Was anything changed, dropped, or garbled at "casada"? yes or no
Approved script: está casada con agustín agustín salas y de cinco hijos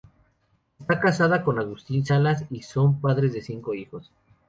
no